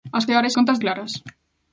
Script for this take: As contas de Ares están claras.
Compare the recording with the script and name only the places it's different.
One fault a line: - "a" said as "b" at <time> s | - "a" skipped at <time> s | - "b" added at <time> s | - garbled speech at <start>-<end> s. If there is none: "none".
- "contas" skipped at 0.2 s
- "están" said as "contas" at 0.5 s